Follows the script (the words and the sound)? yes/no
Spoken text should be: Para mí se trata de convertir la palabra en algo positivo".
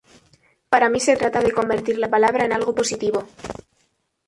yes